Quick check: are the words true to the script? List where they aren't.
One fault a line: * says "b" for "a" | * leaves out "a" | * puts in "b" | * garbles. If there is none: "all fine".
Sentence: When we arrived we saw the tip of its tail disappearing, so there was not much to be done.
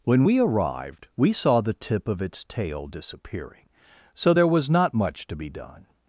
all fine